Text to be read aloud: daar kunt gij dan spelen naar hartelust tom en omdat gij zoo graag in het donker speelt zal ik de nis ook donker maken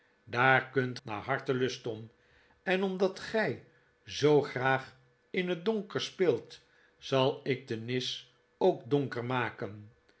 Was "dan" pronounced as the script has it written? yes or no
no